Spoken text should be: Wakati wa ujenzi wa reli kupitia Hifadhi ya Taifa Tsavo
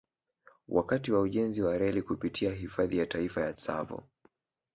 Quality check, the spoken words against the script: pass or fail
fail